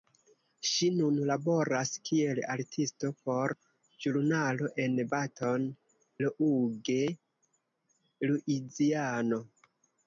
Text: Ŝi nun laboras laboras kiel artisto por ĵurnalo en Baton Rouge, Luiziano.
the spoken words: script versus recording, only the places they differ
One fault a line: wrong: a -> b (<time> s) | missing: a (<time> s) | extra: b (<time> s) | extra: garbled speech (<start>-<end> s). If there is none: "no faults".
missing: laboras (1.9 s)